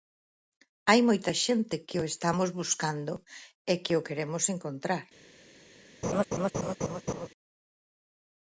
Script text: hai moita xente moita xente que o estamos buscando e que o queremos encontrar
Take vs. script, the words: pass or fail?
fail